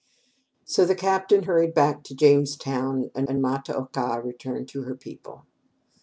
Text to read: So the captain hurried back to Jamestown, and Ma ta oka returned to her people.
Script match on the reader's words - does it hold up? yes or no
no